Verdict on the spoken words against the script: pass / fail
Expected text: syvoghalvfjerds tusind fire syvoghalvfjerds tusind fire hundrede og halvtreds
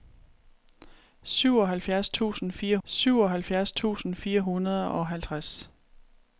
pass